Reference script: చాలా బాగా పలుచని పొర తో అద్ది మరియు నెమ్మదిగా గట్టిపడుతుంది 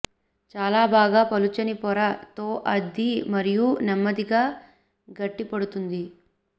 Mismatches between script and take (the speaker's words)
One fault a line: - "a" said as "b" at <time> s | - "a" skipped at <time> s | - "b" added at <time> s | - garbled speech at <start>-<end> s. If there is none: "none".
none